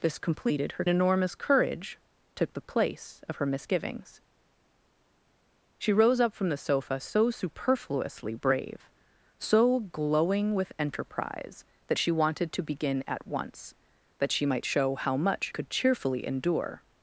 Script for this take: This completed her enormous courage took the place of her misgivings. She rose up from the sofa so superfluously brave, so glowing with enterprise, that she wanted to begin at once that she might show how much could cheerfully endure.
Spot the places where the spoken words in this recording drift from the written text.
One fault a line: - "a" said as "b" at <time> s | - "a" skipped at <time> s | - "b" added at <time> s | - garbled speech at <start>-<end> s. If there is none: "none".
none